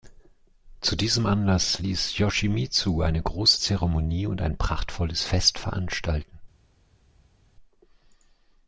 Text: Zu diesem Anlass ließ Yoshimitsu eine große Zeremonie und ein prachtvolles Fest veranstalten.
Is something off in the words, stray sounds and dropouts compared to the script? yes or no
no